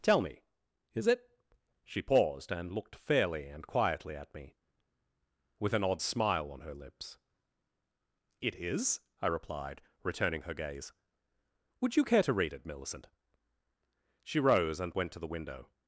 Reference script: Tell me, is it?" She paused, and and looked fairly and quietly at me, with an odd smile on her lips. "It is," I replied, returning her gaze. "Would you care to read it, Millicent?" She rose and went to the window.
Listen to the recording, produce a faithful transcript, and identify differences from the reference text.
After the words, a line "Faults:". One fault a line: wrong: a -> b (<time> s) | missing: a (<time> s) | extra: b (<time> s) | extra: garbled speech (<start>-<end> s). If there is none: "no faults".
Tell me, is it?" She paused, and looked fairly and quietly at me, with an odd smile on her lips. "It is," I replied, returning her gaze. "Would you care to read it, Millicent?" She rose and went to the window.
Faults:
missing: and (2.7 s)